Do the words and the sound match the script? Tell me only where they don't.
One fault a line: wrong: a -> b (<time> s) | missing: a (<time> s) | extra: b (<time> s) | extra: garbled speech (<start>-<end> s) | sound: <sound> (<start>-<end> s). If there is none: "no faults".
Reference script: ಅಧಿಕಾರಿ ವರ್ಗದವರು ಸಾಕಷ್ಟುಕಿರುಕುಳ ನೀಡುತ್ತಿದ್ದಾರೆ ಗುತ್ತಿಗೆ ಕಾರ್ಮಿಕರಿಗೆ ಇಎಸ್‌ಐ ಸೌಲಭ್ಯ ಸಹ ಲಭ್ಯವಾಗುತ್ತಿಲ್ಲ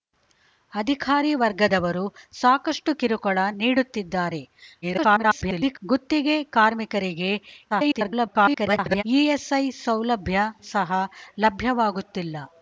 extra: garbled speech (4.8-5.8 s)
extra: garbled speech (7.7-9.0 s)